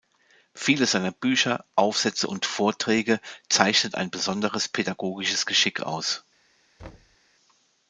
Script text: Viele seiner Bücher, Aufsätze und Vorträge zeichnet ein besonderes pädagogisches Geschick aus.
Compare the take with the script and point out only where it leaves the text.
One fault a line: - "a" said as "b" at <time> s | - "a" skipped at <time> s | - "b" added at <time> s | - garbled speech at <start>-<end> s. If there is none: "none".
none